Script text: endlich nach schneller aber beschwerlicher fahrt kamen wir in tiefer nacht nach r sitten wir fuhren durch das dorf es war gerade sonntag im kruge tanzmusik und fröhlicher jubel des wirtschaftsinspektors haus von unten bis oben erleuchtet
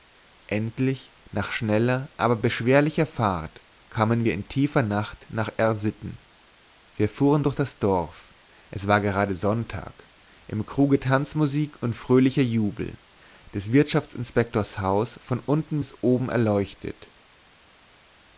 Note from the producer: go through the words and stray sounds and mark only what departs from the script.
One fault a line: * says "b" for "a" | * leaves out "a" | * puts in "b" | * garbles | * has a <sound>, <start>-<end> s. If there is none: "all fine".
all fine